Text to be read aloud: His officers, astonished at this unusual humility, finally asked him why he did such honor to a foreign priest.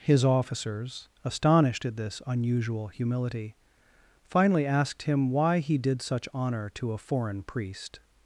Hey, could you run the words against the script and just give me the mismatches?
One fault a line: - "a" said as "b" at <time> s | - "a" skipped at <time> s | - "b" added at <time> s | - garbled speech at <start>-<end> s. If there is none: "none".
none